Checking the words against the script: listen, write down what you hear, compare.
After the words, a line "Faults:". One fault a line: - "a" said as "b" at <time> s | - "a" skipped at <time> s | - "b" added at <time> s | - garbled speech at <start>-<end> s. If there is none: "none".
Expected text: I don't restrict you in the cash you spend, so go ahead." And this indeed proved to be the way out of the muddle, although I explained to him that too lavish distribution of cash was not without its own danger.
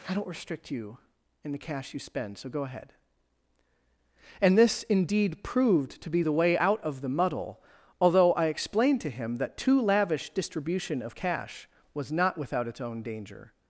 I don't restrict you in the cash you spend, so go ahead." And this indeed proved to be the way out of the muddle, although I explained to him that too lavish distribution of cash was not without its own danger.
Faults:
none